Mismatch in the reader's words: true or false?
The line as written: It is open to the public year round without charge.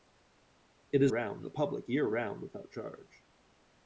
true